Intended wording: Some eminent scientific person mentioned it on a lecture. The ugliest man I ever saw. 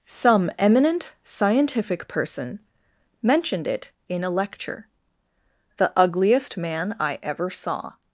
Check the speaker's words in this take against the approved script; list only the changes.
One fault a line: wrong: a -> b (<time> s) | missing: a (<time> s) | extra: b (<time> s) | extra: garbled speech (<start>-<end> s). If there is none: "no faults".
wrong: on -> in (4.1 s)